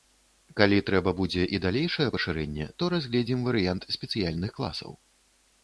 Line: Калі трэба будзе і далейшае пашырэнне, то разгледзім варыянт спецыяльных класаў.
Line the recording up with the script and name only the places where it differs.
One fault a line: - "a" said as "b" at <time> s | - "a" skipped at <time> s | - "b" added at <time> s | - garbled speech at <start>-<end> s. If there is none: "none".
none